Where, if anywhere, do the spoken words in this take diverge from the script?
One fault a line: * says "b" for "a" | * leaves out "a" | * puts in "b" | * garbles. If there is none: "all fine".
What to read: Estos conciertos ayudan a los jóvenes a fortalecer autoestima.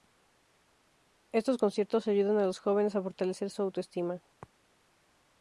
* puts in "su"